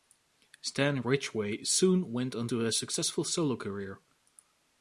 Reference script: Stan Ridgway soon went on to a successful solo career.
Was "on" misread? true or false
false